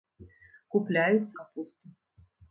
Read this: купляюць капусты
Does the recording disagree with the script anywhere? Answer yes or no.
no